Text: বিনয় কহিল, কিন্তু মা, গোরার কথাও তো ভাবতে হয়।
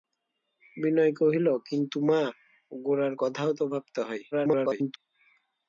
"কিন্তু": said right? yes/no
yes